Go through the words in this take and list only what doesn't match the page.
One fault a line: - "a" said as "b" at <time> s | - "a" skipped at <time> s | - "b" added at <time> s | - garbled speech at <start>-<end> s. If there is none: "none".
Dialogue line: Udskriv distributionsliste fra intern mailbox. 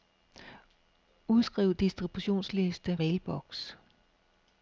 - "fra intern" skipped at 3.0 s